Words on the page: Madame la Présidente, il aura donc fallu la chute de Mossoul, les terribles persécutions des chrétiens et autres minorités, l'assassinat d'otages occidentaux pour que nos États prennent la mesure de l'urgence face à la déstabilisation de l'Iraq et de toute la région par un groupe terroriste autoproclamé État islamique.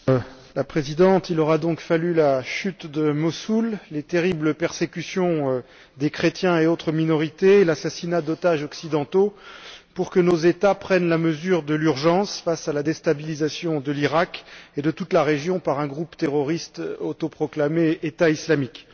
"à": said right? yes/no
yes